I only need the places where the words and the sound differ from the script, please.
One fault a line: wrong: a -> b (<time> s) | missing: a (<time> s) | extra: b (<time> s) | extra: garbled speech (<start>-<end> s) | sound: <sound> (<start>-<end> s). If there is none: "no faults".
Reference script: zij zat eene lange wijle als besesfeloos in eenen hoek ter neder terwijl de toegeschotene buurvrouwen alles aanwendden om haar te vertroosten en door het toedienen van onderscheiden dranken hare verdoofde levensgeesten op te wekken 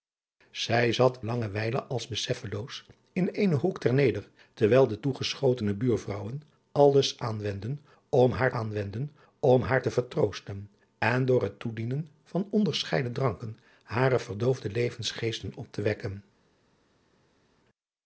missing: eene (1.2 s)
extra: aanwendden om haar (8.5 s)